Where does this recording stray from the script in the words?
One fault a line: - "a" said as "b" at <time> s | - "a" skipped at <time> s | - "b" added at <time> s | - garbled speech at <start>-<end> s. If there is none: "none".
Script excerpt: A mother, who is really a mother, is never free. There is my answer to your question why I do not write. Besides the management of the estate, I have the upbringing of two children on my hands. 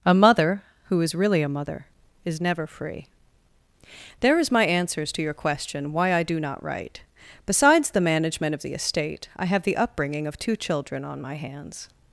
- "answer" said as "answers" at 4.7 s